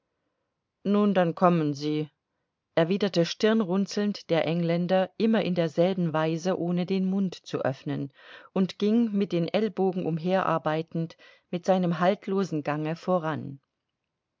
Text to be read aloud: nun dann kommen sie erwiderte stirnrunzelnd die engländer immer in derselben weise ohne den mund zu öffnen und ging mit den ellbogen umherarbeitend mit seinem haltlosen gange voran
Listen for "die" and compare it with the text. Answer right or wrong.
wrong